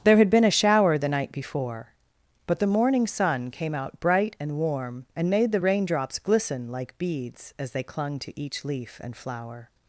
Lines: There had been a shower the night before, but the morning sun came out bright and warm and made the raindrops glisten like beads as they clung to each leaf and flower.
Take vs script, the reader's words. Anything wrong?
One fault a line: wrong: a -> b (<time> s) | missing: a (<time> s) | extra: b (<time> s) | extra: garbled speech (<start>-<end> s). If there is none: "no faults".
no faults